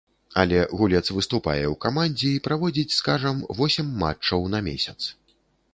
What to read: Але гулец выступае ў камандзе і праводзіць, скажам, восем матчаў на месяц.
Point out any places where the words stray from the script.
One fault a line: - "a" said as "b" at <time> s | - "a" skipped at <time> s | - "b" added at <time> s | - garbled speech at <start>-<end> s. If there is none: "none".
none